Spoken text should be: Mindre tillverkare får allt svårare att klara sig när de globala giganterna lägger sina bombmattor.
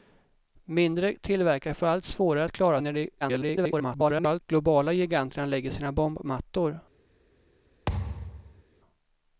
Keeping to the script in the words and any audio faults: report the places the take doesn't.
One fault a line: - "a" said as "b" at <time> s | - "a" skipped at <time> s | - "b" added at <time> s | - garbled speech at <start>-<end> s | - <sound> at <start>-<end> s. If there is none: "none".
- "sig" skipped at 2.8 s
- garbled speech at 3.2-4.4 s
- thud at 7.9-8.6 s